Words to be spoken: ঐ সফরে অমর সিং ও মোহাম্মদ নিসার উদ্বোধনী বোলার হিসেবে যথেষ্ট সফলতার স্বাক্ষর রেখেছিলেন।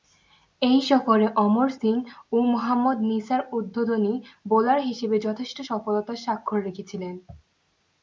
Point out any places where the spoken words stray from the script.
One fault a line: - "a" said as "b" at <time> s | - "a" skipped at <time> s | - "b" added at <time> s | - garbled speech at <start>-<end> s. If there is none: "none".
none